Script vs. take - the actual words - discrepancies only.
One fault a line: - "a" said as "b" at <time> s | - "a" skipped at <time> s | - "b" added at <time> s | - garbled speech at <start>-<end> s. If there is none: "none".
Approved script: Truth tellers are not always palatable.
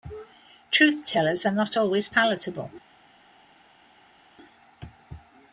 none